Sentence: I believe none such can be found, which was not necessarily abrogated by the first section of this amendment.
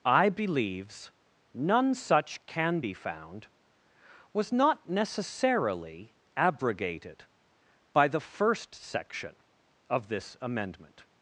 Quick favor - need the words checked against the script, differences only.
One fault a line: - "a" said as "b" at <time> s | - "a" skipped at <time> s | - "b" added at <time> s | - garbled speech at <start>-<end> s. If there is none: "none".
- "believe" said as "believes" at 0.3 s
- "which" skipped at 3.5 s